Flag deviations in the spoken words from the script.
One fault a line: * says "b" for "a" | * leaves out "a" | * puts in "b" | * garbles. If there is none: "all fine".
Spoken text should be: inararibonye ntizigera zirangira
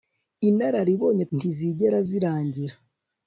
all fine